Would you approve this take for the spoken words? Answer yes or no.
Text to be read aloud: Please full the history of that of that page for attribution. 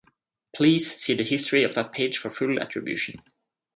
no